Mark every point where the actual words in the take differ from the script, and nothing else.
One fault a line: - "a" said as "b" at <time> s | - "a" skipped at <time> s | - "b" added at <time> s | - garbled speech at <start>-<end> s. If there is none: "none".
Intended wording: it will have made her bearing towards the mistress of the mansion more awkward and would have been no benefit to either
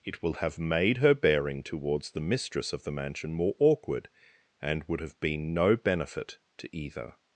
none